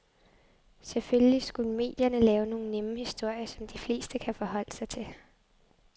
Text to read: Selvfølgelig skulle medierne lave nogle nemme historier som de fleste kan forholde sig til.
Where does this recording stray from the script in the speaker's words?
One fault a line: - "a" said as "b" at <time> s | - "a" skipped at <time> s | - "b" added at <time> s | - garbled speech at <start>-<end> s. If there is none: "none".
none